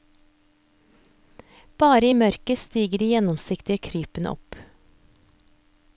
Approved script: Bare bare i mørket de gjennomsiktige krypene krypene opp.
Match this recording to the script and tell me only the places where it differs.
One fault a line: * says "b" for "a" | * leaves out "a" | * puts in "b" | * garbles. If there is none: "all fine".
* leaves out "bare"
* puts in "stiger"
* leaves out "krypene"